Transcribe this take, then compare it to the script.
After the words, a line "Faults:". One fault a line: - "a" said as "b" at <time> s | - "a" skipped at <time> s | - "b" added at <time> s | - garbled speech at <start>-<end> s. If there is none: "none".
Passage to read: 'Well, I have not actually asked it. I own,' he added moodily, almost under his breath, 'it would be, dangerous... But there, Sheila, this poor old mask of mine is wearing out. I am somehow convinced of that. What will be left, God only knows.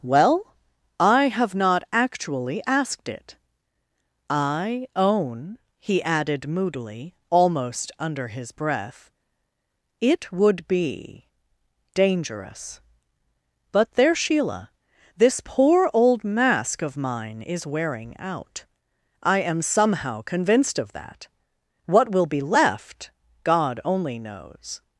'Well, I have not actually asked it. I own,' he added moodily, almost under his breath, 'it would be, dangerous... But there, Sheila, this poor old mask of mine is wearing out. I am somehow convinced of that. What will be left, God only knows.
Faults:
none